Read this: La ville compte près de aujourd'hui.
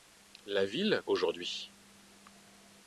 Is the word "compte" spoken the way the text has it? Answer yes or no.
no